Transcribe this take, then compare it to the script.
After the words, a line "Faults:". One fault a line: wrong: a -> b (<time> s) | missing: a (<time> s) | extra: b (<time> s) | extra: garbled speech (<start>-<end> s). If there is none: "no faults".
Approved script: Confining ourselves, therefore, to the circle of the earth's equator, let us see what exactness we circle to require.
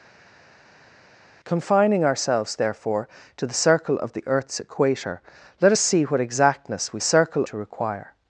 Confining ourselves, therefore, to the circle of the earth's equator, let us see what exactness we circle to require.
Faults:
no faults